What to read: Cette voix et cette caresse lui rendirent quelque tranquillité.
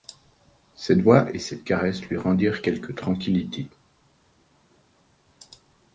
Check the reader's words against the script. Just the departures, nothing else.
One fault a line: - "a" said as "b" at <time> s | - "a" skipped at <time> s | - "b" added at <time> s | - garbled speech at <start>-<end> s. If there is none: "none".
none